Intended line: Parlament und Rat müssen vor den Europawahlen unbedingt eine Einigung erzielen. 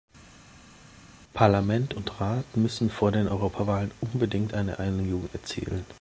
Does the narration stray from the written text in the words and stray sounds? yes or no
no